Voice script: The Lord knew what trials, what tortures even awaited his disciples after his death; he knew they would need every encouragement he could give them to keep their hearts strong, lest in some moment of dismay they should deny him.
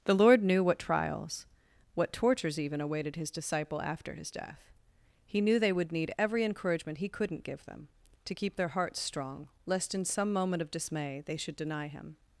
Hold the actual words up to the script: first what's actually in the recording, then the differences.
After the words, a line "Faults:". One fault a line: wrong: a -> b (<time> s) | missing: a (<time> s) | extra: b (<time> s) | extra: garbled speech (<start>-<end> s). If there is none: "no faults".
The Lord knew what trials, what tortures even awaited his disciple after his death; he knew they would need every encouragement he couldn't give them to keep their hearts strong, lest in some moment of dismay they should deny him.
Faults:
wrong: disciples -> disciple (3.3 s)
wrong: could -> couldn't (7.1 s)